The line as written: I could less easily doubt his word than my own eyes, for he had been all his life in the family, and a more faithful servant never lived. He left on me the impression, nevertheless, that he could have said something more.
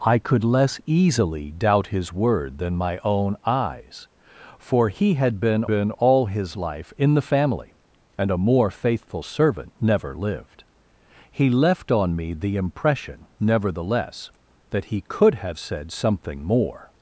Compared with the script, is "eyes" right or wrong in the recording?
right